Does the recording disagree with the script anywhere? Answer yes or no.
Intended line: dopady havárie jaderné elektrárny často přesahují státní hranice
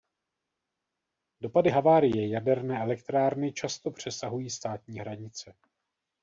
no